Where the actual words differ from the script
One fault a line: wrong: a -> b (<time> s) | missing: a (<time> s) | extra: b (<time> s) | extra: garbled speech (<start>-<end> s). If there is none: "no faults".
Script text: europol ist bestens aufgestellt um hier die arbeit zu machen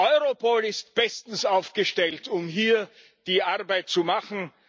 no faults